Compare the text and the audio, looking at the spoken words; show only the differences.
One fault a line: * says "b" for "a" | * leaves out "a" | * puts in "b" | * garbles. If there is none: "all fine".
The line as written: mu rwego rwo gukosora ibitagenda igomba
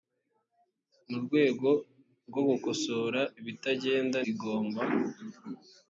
all fine